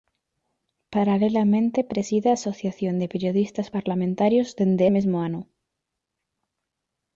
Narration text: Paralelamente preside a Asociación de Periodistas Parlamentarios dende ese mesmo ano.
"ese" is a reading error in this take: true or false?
true